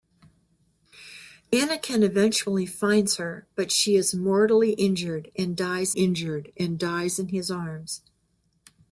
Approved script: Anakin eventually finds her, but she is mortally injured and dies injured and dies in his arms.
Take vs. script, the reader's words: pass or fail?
pass